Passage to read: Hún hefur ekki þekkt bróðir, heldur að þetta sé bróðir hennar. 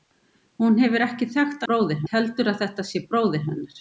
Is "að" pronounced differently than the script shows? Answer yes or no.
no